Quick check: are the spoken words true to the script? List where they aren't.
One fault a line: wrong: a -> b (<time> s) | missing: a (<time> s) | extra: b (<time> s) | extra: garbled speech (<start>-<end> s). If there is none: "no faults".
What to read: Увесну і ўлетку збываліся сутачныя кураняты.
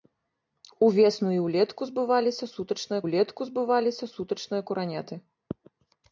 extra: ўлетку збываліся сутачныя (3.0 s)